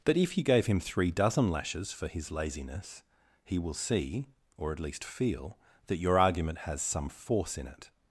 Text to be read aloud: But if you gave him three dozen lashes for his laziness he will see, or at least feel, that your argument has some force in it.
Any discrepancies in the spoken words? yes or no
no